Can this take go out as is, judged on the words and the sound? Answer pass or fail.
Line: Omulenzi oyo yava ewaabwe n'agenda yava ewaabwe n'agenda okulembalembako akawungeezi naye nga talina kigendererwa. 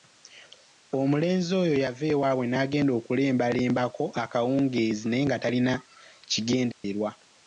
fail